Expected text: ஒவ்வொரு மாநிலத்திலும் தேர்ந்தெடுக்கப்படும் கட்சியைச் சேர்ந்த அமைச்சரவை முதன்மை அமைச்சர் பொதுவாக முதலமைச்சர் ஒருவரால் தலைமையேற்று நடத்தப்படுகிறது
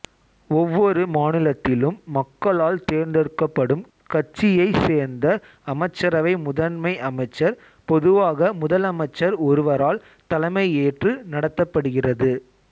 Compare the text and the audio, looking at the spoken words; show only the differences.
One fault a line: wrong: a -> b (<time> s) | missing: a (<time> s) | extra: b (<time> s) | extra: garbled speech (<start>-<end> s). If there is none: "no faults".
extra: மக்களால் (2.1 s)